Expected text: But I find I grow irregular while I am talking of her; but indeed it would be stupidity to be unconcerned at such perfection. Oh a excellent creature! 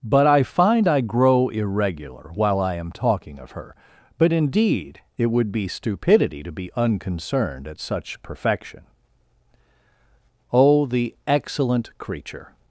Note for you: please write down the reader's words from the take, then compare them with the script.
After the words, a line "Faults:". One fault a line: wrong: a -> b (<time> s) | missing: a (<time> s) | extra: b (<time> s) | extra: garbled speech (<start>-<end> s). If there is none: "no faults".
But I find I grow irregular while I am talking of her; but indeed it would be stupidity to be unconcerned at such perfection. Oh the excellent creature!
Faults:
wrong: a -> the (10.9 s)